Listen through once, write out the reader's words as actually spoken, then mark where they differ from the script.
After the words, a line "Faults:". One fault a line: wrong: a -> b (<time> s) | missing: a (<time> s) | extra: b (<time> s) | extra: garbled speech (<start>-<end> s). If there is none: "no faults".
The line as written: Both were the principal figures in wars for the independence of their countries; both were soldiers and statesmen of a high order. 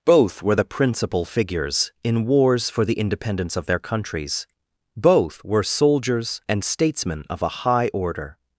Both were the principal figures in wars for the independence of their countries; both were soldiers and statesmen of a high order.
Faults:
no faults